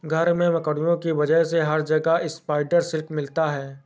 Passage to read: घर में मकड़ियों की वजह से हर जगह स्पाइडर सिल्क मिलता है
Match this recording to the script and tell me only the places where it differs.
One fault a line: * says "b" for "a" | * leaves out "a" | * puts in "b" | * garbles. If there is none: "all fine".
all fine